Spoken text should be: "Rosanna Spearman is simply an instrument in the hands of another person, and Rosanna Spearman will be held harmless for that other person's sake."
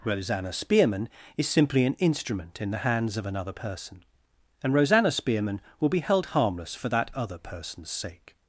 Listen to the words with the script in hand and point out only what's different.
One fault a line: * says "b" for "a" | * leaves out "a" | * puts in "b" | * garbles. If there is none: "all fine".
all fine